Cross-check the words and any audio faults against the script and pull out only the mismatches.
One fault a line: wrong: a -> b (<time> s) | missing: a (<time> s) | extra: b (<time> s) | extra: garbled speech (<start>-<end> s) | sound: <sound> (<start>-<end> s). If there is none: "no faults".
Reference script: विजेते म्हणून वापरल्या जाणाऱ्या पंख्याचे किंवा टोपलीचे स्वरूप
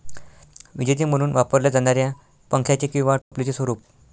sound: dropout (3.2-3.3 s)